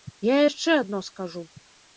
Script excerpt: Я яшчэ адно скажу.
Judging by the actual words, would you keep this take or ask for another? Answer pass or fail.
pass